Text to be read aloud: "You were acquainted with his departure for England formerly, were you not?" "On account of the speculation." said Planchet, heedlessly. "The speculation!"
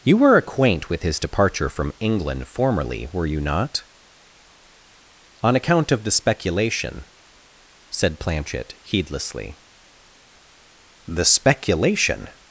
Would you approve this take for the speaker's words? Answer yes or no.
no